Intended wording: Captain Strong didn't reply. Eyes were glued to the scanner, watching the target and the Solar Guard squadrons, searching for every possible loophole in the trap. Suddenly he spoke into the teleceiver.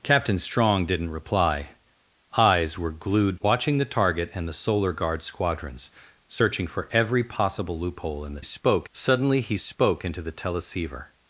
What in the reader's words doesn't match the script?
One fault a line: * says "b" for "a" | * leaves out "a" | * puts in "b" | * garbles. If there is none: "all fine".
* leaves out "to the scanner"
* says "spoke" for "trap"